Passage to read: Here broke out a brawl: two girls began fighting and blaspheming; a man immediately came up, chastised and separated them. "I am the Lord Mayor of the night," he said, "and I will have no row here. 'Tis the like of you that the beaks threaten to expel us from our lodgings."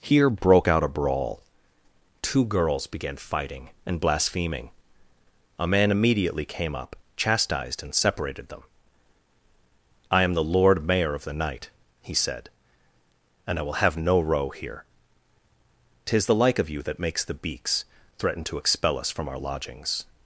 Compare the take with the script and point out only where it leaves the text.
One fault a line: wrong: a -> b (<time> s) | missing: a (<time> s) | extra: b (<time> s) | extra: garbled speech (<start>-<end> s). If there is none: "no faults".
extra: makes (17.0 s)